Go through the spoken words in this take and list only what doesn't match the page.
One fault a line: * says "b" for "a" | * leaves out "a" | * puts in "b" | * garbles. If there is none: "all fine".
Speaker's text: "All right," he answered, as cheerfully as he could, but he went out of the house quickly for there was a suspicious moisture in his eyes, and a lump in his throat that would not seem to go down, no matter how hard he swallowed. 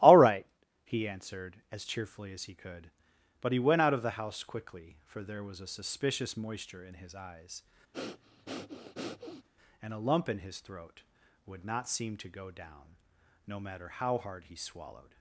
* leaves out "that"